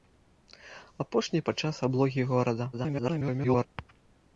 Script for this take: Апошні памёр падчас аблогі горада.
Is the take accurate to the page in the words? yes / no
no